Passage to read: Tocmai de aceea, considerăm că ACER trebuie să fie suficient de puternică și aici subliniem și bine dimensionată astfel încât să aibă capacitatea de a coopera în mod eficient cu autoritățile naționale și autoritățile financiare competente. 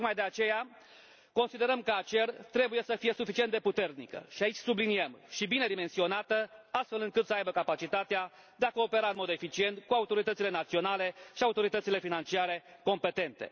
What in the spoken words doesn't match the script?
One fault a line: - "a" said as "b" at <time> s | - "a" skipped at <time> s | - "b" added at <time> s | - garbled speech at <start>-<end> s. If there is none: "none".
none